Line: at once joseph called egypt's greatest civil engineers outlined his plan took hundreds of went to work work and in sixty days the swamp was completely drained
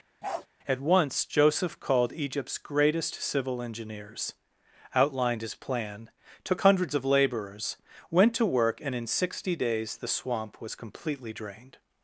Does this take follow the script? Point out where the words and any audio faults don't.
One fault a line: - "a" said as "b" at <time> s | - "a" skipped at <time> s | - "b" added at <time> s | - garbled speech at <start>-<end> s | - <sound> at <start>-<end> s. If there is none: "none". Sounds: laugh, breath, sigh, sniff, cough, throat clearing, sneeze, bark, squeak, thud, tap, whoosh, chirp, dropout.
- bark at 0.2-0.5 s
- "laborers" added at 7.1 s
- "work" skipped at 8.8 s